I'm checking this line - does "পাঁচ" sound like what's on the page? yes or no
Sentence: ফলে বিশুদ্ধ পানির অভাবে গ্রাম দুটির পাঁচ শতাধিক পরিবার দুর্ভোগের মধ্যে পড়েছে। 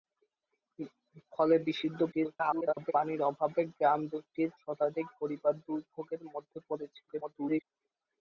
no